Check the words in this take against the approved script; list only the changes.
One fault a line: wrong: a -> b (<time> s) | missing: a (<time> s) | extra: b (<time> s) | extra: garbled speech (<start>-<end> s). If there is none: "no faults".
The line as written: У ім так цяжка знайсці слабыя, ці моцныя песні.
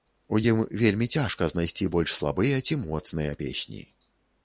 wrong: так -> вельмі (0.8 s)
extra: больш (2.0 s)